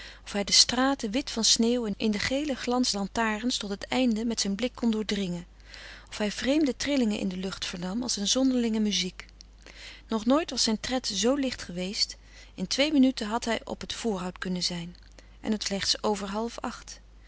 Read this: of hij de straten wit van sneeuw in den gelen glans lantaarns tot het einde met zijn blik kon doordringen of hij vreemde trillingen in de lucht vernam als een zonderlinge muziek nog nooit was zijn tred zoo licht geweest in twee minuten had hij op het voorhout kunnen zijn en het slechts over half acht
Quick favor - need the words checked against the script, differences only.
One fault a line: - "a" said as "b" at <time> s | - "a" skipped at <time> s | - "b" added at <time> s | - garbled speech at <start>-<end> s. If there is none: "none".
none